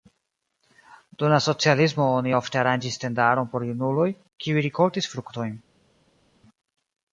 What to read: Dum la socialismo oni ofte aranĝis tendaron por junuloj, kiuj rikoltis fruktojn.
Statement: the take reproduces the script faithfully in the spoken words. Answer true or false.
true